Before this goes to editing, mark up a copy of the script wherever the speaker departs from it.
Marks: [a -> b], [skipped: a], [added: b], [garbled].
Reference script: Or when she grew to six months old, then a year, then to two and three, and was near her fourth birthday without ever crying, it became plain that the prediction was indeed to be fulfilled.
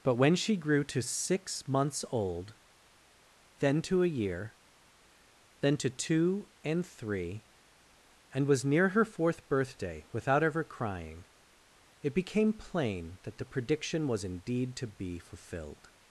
[Or -> But] when she grew to six months old, then [added: to] a year, then to two and three, and was near her fourth birthday without ever crying, it became plain that the prediction was indeed to be fulfilled.